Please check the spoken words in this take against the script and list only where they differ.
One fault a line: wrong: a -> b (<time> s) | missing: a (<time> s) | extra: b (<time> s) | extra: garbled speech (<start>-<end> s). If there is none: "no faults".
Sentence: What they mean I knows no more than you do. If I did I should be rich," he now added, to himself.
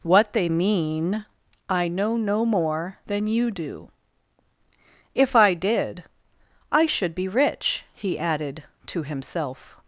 wrong: knows -> know (1.9 s)
missing: now (8.2 s)